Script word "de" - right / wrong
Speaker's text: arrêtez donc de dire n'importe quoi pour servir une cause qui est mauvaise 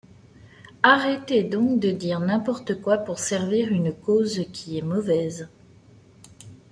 right